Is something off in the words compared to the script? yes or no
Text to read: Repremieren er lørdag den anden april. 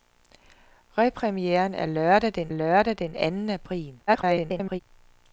yes